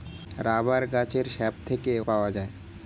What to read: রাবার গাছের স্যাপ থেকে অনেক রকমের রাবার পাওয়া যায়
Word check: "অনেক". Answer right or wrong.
wrong